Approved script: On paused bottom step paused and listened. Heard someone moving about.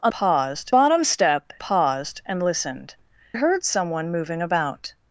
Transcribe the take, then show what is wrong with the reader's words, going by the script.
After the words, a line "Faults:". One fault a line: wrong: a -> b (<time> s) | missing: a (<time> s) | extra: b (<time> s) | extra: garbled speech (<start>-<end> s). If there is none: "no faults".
On paused bottom step paused and listened. Heard someone moving about.
Faults:
no faults